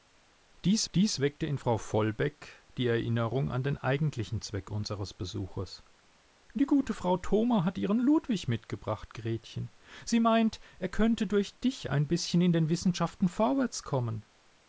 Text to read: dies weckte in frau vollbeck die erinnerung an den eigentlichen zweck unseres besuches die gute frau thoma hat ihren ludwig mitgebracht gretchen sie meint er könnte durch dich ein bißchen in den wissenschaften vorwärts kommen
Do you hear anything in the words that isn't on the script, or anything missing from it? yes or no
yes